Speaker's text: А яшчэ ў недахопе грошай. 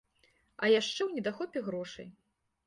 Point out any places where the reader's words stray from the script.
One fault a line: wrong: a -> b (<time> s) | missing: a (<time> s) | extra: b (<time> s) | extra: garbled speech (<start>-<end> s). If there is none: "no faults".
no faults